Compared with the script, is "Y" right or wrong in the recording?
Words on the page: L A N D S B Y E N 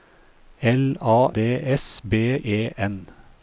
wrong